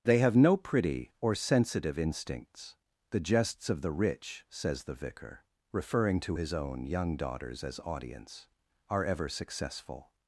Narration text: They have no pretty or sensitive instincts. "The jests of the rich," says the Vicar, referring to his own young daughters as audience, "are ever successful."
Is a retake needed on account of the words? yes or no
no